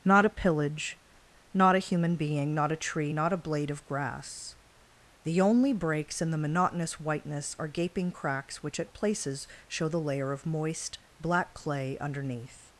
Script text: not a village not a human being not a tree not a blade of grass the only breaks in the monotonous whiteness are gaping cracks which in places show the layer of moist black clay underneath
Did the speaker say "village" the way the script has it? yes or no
no